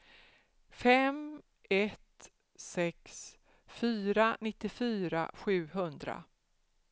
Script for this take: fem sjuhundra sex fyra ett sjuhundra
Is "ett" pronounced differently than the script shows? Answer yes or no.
yes